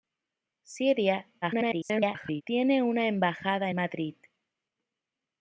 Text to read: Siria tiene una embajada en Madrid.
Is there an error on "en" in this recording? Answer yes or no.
yes